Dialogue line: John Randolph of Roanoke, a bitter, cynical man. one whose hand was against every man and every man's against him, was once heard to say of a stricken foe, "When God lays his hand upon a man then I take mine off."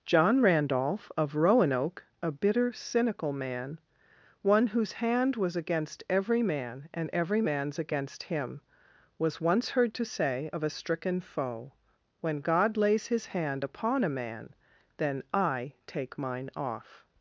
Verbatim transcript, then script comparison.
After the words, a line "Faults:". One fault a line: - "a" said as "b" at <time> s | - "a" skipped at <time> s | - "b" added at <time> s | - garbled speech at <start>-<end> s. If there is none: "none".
John Randolph of Roanoke, a bitter, cynical man. one whose hand was against every man and every man's against him, was once heard to say of a stricken foe, "When God lays his hand upon a man then I take mine off."
Faults:
none